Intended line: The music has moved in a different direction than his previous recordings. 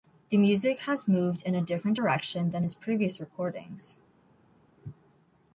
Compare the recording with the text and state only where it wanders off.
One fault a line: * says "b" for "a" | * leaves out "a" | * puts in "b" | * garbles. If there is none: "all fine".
all fine